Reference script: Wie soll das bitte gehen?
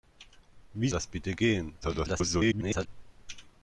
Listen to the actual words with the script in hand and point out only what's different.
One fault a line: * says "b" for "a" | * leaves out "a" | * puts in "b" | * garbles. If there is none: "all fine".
* leaves out "soll"
* garbles